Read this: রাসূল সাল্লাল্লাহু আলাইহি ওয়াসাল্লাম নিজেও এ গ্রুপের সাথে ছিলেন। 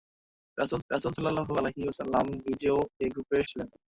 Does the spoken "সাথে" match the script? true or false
false